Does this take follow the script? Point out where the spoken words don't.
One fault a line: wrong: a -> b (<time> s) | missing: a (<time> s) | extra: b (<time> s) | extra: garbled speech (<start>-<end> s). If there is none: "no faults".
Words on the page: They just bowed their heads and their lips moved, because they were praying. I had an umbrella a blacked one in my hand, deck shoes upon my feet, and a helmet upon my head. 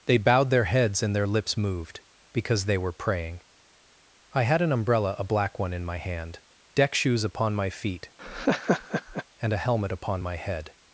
missing: just (0.2 s)
wrong: blacked -> black (5.2 s)